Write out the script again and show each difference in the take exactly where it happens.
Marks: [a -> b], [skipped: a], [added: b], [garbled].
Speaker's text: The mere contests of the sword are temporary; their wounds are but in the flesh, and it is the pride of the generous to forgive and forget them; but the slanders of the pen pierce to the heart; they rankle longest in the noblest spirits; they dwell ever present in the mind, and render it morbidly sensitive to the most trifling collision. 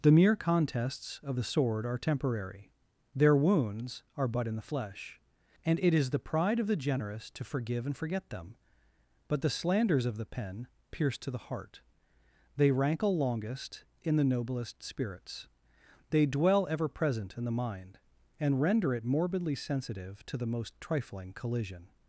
The mere contests of the sword are temporary; their wounds are but in the flesh, and it is the pride of the generous to forgive and forget them; but the slanders of the pen pierce to the heart; they rankle longest in the noblest spirits; they dwell ever present in the mind, and render it morbidly sensitive to the most trifling collision.